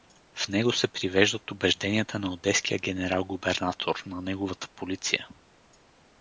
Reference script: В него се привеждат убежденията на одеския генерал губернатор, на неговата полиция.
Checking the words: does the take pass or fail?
pass